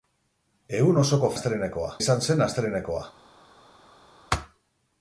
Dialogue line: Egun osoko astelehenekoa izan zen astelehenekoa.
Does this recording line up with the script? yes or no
yes